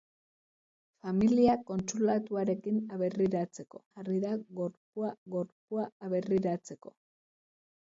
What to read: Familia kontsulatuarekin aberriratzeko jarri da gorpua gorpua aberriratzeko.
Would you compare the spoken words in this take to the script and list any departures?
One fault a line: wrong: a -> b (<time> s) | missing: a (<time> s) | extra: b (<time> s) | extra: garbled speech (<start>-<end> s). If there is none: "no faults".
no faults